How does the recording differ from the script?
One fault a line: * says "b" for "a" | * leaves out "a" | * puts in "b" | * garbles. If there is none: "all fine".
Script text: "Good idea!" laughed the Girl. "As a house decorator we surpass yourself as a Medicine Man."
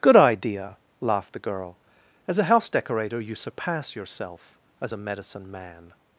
* says "you" for "we"